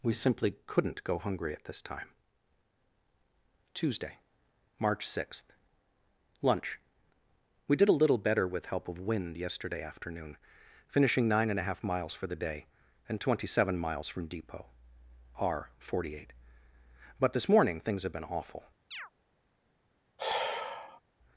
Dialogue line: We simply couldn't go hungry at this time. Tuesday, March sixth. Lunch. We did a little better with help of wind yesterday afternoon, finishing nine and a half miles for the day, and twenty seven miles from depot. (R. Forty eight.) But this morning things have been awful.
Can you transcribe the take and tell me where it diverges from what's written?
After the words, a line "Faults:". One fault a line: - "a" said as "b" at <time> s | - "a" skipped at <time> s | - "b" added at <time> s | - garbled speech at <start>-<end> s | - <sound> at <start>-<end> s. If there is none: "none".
We simply couldn't go hungry at this time. Tuesday, March sixth. Lunch. We did a little better with help of wind yesterday afternoon, finishing nine and a half miles for the day, and twenty seven miles from depot. (R. Forty eight.) But this morning things have been awful.
Faults:
- chirp at 18.9-19.1 s
- sigh at 20.2-21.0 s